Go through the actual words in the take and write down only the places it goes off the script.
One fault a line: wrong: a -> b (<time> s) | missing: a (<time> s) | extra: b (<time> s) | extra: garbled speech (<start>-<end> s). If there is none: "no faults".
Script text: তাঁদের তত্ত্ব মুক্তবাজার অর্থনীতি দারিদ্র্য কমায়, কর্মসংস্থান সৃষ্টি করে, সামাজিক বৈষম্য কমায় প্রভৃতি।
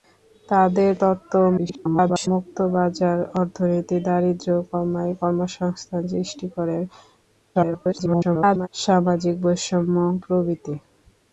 extra: garbled speech (1.6-2.3 s)
extra: garbled speech (7.5-8.7 s)
missing: কমায় (10.0 s)